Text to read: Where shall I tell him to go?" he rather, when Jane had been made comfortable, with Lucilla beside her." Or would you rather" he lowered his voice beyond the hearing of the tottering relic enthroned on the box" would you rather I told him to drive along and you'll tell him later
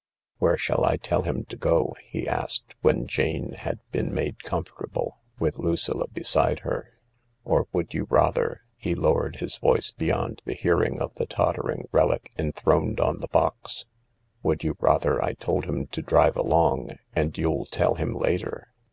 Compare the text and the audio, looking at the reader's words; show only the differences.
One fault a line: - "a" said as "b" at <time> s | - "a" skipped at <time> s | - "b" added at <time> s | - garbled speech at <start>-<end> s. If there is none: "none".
- "rather" said as "asked" at 2.3 s